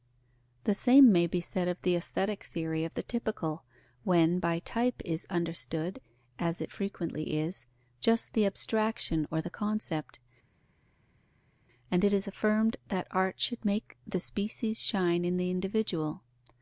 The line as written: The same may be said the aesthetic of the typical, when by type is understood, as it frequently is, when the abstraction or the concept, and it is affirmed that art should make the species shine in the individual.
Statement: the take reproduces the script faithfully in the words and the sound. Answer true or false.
false